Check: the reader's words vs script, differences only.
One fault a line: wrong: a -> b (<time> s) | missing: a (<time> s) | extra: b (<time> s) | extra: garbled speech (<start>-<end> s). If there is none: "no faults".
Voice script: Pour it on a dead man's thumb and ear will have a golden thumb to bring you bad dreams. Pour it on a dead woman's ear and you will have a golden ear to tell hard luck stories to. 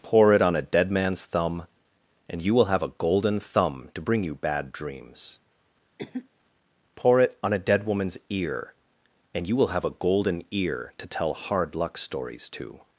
wrong: ear -> you (2.4 s)